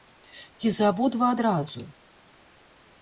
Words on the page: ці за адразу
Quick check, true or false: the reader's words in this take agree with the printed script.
false